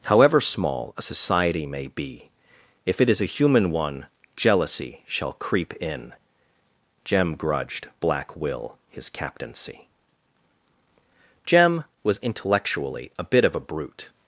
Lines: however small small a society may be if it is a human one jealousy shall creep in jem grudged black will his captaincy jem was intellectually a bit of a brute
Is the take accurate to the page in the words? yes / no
no